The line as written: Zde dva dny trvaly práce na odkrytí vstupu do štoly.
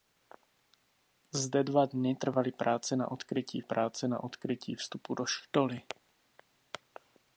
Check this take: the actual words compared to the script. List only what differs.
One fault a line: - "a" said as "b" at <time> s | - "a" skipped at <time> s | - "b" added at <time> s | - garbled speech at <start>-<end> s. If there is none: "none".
- "práce na odkrytí" added at 3.6 s